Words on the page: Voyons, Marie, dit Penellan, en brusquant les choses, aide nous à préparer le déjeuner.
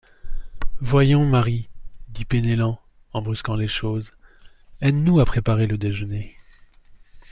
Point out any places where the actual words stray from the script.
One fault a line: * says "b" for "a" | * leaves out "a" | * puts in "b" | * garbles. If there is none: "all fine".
all fine